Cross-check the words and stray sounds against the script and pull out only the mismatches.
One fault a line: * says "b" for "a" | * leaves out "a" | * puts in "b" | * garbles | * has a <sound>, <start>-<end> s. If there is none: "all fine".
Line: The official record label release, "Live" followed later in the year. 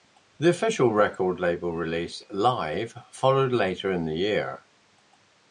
all fine